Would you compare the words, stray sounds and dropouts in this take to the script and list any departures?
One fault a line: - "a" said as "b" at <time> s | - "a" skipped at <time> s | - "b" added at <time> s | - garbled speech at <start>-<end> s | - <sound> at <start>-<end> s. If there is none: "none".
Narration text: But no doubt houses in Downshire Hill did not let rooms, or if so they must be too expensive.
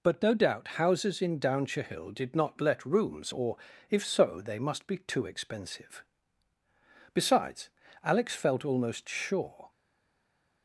- "Besides Alex felt almost sure" added at 7.1 s